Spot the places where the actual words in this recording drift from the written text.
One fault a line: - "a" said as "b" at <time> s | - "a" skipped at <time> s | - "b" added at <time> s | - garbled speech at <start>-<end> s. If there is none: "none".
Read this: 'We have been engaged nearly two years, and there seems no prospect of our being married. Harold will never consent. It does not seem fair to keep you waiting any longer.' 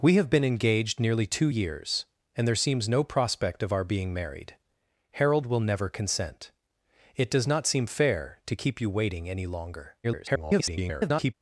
- garbled speech at 10.0-11.3 s